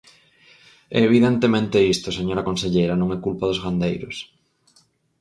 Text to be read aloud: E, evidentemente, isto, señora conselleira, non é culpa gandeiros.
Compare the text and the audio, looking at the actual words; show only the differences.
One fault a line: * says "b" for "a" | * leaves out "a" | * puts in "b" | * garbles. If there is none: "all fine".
* puts in "dos"